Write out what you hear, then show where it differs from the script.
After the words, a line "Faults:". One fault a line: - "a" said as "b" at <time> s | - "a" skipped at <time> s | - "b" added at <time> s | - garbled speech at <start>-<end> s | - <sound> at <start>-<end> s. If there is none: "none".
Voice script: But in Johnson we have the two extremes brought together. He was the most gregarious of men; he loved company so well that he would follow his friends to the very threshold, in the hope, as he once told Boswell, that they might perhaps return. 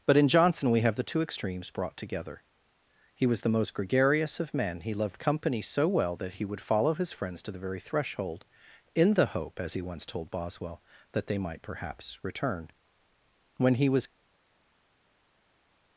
But in Johnson we have the two extremes brought together. He was the most gregarious of men; he loved company so well that he would follow his friends to the very threshold, in the hope, as he once told Boswell, that they might perhaps return. When he was
Faults:
- "When he was" added at 13.6 s